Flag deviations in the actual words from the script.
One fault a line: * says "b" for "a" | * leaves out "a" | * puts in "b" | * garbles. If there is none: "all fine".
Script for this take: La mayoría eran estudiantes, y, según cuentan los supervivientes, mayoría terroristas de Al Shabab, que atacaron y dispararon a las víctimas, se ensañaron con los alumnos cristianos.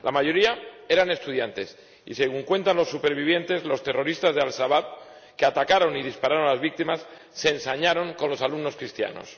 * says "los" for "mayoría"